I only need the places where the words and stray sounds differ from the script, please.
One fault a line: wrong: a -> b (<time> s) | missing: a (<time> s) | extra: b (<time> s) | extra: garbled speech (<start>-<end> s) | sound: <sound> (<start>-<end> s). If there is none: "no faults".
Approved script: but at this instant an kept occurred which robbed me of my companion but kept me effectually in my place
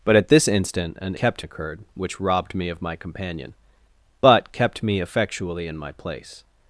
no faults